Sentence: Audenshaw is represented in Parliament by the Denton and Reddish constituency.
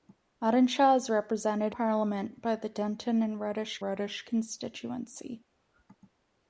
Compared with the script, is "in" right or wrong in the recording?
wrong